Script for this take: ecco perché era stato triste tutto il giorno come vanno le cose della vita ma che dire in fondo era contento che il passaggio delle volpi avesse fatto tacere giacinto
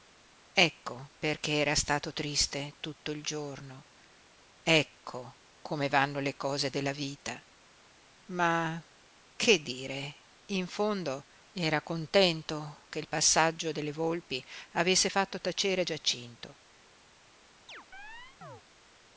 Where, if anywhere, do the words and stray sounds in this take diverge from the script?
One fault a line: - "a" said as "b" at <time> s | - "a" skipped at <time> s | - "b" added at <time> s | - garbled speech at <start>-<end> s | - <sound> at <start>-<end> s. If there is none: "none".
- "ecco" added at 4.6 s
- chirp at 17.7-18.6 s